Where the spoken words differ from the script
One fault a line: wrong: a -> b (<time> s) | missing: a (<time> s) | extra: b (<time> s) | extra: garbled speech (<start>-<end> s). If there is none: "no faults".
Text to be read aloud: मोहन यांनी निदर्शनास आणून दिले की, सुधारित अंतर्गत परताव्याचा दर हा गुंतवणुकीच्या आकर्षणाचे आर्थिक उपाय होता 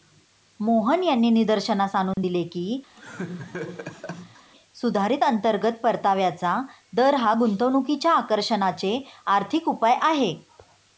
wrong: होता -> आहे (10.0 s)